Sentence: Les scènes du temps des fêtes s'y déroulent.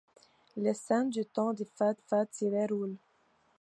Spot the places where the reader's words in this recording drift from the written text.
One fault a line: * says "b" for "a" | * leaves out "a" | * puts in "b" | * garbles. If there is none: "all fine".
* puts in "fêtes"